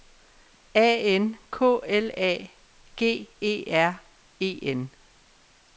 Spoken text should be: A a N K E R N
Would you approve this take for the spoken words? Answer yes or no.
no